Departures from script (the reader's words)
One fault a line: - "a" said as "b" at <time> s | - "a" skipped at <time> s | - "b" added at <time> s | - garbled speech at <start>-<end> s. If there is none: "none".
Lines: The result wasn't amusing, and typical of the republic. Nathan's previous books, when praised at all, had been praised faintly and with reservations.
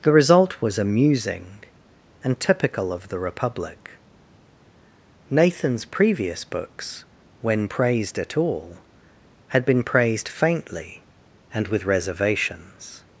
- "wasn't" said as "was" at 0.6 s